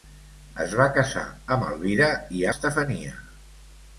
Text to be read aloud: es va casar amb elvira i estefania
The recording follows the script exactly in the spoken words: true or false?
true